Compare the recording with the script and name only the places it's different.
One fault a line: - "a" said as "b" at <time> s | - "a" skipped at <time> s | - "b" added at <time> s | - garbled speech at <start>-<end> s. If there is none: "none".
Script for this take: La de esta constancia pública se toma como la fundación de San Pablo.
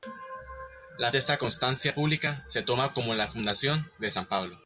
none